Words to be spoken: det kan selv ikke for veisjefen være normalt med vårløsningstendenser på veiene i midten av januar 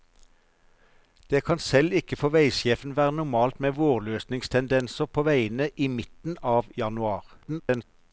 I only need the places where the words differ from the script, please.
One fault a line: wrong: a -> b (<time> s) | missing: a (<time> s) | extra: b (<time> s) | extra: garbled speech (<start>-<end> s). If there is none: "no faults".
extra: garbled speech (7.4-7.8 s)